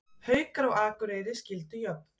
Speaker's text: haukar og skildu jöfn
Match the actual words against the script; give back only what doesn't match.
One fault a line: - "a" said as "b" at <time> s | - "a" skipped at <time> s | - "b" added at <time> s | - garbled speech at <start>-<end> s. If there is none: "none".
- "akureyri" added at 0.8 s